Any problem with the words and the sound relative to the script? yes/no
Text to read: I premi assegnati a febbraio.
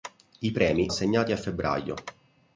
no